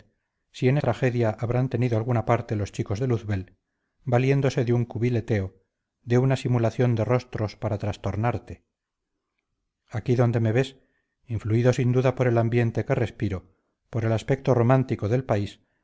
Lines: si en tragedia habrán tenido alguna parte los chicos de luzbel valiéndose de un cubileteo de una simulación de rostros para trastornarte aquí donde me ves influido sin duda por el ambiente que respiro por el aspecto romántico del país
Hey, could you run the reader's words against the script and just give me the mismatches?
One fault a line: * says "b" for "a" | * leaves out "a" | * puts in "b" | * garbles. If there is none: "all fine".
all fine